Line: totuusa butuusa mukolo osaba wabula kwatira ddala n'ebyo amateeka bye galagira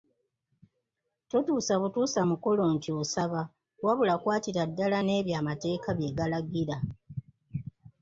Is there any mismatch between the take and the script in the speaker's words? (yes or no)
yes